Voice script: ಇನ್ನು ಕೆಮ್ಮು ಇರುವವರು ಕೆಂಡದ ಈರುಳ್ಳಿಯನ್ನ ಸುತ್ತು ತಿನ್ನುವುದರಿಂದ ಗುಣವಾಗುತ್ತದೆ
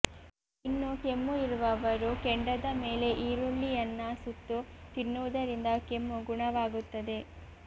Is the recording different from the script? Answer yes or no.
yes